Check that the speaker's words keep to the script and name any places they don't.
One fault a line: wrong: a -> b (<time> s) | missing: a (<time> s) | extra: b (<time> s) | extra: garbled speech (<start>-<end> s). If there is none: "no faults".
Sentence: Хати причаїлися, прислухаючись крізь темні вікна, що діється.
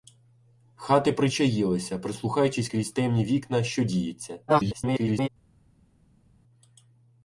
extra: garbled speech (4.5-5.3 s)